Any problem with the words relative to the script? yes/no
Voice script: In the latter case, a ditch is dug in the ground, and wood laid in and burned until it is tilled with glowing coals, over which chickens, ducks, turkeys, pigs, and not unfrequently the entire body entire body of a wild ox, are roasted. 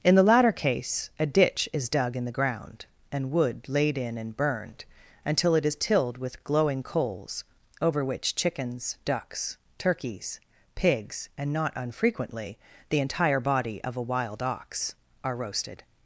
yes